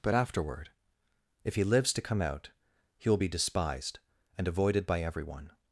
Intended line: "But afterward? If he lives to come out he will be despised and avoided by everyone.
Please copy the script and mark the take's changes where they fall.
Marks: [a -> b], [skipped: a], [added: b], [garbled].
"But afterward? If he lives to come out he will be despised and avoided by everyone.